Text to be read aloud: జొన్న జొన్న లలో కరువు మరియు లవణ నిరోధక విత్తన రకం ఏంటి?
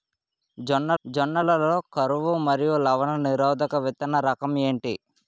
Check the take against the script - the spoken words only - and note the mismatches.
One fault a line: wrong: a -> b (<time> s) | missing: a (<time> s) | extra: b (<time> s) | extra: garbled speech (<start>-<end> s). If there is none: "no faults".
no faults